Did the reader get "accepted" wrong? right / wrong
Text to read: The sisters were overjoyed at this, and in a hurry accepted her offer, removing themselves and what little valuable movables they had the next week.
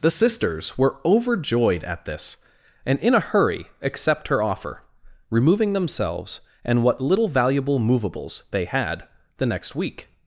wrong